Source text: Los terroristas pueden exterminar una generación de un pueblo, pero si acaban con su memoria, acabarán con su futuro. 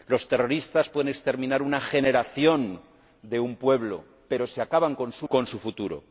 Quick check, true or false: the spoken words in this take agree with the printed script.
false